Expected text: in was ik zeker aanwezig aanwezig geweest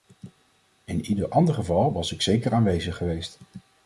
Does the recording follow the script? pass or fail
fail